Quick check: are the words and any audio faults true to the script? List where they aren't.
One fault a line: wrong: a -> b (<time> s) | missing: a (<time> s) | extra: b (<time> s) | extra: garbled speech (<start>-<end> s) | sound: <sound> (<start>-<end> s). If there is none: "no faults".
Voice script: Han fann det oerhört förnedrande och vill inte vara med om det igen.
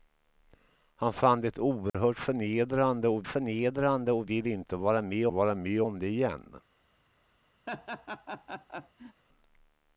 sound: dropout (1.9-1.9 s)
extra: förnedrande och (3.3 s)
extra: vara med (5.3 s)
sound: laugh (7.7-9.2 s)